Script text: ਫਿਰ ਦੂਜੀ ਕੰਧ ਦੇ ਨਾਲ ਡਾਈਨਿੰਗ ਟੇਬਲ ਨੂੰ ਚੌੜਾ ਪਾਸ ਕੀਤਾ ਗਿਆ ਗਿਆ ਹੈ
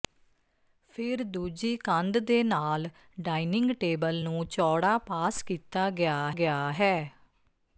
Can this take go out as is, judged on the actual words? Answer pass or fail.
pass